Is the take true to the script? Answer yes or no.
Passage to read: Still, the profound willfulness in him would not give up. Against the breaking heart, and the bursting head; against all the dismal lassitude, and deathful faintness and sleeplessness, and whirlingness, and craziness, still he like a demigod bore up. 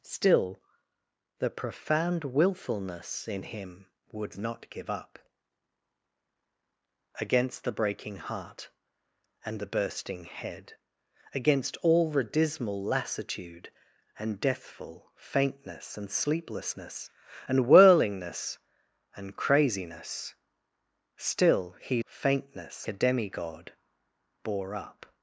no